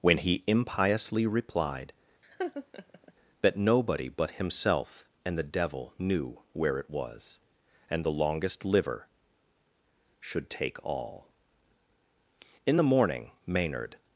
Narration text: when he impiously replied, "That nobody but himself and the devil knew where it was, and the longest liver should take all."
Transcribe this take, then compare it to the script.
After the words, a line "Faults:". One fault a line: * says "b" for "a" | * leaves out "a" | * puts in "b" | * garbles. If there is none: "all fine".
when he impiously replied, "That nobody but himself and the devil knew where it was, and the longest liver should take all." In the morning Maynard
Faults:
* puts in "In the morning Maynard"